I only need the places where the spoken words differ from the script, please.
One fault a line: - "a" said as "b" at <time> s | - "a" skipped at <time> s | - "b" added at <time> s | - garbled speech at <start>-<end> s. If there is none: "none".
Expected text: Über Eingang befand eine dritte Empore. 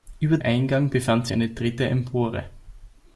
none